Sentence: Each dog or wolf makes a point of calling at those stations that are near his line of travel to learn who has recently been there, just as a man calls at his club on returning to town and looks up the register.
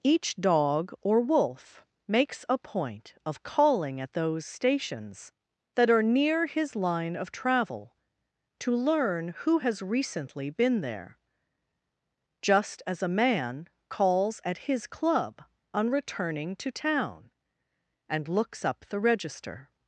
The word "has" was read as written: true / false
true